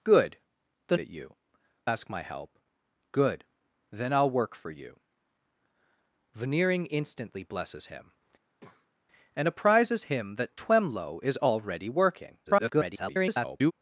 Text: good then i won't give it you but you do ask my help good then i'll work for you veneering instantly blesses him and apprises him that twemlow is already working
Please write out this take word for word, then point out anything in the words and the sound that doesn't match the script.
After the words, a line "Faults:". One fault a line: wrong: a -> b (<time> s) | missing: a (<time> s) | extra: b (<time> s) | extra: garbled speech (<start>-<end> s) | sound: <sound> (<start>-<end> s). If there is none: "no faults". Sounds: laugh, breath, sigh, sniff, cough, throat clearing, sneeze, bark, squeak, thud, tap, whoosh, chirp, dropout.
good then it you ask my help good then i'll work for you veneering instantly blesses him and apprises him that twemlow is already working [garbled]
Faults:
missing: i won't give (1.0 s)
missing: but you do (1.4 s)
sound: breath (8.5-8.9 s)
extra: garbled speech (12.4-13.7 s)